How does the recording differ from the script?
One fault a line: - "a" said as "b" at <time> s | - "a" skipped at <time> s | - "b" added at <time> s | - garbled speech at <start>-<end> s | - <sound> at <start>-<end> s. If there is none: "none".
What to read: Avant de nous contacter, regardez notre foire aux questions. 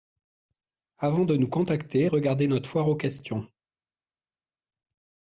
none